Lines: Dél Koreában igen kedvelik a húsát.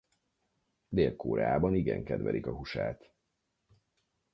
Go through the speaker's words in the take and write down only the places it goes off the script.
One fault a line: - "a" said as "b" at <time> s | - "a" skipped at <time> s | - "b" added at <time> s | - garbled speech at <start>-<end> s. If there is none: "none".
none